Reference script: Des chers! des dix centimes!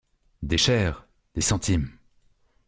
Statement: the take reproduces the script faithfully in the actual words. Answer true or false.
false